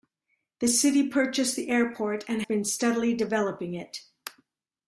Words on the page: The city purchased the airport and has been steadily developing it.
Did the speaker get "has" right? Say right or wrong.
wrong